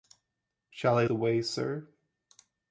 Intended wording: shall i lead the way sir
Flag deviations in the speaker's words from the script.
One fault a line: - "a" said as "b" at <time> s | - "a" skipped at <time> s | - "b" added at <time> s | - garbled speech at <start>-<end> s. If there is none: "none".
- "lead" skipped at 1.1 s